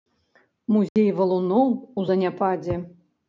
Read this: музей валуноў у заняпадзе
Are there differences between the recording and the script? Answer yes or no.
no